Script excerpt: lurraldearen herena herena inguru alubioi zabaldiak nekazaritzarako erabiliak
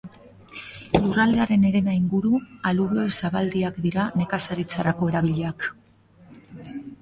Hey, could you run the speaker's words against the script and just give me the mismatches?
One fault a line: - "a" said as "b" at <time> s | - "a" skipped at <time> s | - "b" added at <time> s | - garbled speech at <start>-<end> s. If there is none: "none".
- "herena" skipped at 1.9 s
- "dira" added at 3.9 s